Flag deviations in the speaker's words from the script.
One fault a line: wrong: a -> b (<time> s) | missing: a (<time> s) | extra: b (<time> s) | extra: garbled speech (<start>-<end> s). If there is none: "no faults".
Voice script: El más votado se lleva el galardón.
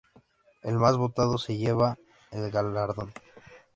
no faults